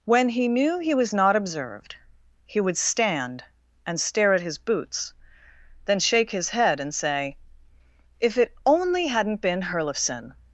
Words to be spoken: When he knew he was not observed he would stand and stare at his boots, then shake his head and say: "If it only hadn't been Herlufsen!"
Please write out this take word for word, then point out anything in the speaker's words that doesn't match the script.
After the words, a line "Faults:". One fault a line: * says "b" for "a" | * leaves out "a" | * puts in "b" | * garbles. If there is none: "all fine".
When he knew he was not observed he would stand and stare at his boots, then shake his head and say: "If it only hadn't been Herlufsen!"
Faults:
all fine